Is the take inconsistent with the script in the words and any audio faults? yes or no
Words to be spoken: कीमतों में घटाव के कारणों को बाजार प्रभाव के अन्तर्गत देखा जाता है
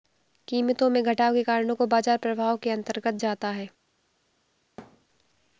yes